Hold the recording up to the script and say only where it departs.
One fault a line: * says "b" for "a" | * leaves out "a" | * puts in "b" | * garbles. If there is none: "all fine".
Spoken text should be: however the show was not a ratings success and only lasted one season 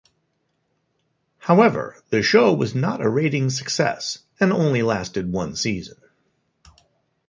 all fine